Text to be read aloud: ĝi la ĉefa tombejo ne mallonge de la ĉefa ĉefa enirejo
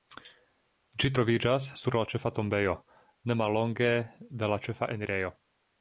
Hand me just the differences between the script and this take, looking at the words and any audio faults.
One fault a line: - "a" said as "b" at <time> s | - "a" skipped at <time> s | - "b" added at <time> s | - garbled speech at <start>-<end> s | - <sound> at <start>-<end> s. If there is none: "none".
- "troviĝas sur" added at 1.1 s
- "ĉefa" skipped at 4.9 s